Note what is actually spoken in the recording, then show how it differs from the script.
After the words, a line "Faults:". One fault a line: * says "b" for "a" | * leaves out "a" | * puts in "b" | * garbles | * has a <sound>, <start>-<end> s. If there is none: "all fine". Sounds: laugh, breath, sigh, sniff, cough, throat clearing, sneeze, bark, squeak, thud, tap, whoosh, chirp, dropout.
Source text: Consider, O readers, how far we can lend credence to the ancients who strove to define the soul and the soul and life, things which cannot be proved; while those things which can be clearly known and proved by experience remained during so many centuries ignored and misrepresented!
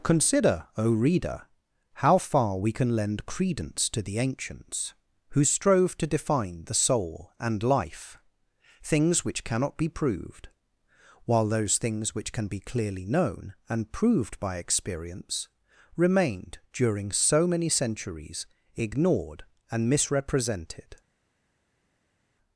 Consider, O reader, how far we can lend credence to the ancients who strove to define the soul and life, things which cannot be proved; while those things which can be clearly known and proved by experience remained during so many centuries ignored and misrepresented!
Faults:
* says "reader" for "readers"
* leaves out "the soul and"